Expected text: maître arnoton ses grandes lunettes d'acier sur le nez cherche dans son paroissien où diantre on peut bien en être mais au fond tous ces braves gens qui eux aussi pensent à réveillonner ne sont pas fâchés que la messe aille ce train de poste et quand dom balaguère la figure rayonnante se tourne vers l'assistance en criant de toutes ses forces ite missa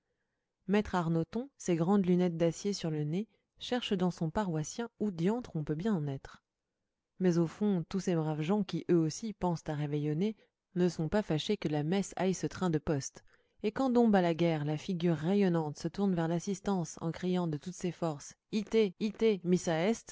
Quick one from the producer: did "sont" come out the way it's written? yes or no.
yes